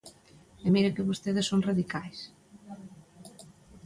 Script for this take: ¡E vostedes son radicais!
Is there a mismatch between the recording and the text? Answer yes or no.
yes